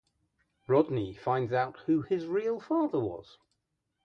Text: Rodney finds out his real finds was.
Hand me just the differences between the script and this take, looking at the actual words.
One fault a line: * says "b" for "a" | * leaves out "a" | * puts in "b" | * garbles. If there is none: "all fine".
* puts in "who"
* says "father" for "finds"